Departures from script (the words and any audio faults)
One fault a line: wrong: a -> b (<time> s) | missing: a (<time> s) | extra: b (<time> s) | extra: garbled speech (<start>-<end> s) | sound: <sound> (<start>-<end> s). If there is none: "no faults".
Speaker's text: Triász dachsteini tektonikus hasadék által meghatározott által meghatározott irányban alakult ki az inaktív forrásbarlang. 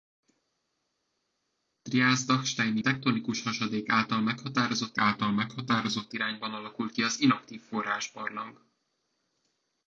no faults